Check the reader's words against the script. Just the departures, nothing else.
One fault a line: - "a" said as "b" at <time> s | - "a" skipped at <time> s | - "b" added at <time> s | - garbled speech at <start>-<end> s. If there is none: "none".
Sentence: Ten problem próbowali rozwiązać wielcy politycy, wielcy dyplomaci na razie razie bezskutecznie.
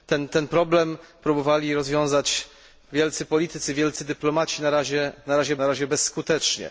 none